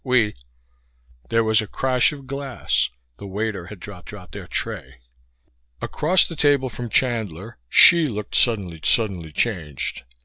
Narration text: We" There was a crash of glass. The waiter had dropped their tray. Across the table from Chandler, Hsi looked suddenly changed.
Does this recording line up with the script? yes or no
no